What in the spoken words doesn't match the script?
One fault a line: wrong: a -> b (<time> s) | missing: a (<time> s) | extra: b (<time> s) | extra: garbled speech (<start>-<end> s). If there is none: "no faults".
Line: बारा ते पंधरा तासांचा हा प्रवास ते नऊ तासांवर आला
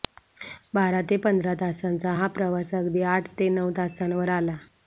extra: अगदी आठ (2.7 s)